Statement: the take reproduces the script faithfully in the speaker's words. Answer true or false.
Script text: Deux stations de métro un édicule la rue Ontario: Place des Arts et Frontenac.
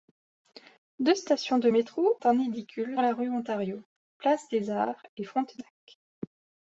true